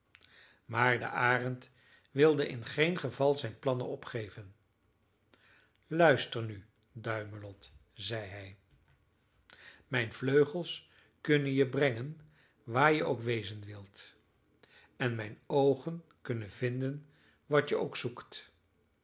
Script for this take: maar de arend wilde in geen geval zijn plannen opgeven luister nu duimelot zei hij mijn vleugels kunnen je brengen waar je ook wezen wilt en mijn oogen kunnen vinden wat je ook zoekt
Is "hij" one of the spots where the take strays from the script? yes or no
no